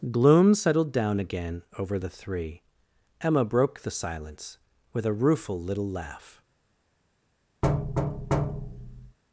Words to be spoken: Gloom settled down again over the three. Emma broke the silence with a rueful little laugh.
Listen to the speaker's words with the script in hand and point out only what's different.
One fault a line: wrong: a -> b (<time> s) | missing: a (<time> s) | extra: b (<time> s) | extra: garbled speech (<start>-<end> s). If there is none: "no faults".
no faults